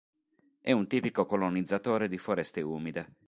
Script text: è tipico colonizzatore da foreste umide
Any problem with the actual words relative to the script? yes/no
yes